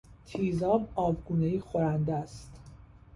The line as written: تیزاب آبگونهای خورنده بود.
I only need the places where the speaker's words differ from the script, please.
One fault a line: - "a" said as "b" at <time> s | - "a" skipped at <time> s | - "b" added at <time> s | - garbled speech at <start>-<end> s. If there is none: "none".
- "بود" said as "است" at 2.1 s